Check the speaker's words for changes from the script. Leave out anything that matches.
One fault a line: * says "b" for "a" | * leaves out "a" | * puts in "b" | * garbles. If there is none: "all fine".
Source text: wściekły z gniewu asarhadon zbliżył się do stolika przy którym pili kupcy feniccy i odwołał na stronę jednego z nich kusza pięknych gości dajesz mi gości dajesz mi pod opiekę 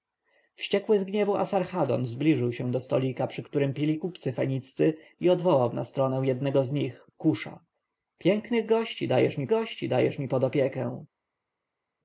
all fine